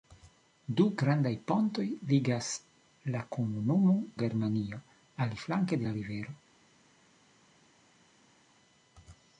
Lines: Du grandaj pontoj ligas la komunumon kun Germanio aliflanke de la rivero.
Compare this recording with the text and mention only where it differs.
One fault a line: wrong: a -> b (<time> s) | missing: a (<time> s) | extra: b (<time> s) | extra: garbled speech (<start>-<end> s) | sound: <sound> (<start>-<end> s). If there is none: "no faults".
missing: kun (4.0 s)
missing: de (5.8 s)